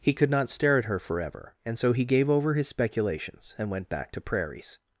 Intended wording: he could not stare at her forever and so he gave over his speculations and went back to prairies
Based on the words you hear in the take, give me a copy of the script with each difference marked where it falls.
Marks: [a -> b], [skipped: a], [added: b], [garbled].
he could not stare at her forever and so he gave over his speculations and went back to prairies